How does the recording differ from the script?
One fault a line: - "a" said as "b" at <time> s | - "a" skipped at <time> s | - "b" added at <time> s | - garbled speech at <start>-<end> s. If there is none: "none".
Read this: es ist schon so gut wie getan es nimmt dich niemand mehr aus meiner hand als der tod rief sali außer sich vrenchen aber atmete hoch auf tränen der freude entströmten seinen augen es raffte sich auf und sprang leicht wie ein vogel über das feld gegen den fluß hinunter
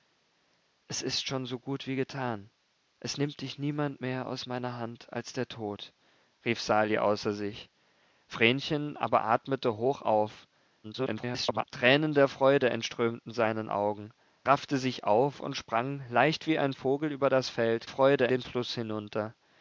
- garbled speech at 10.8-11.7 s
- "es" skipped at 14.1 s
- "gegen" said as "freude" at 17.9 s